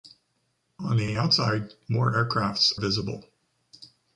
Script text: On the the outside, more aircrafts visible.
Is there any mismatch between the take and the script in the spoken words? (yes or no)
no